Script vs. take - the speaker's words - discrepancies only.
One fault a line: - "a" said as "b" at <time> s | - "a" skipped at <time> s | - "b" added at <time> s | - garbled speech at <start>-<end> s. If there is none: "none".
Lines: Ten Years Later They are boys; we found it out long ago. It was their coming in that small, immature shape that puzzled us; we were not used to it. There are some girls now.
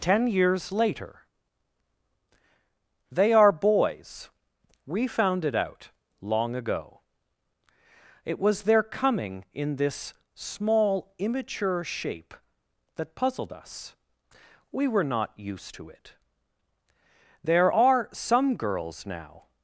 - "that" said as "this" at 9.8 s